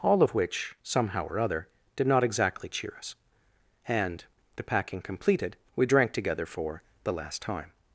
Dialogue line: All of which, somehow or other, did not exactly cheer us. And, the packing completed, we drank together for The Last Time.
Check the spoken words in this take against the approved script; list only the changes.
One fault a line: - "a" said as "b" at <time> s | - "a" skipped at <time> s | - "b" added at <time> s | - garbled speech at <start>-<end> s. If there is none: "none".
none